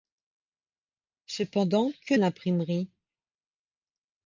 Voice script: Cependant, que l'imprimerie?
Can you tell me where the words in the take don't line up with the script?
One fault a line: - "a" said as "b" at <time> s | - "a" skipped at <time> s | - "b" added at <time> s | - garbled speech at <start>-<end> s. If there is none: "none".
none